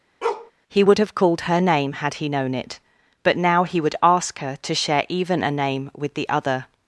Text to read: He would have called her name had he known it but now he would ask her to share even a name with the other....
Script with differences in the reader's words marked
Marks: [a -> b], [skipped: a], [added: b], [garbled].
He would have called her name had he known it but now he would ask her to share even a name with the other....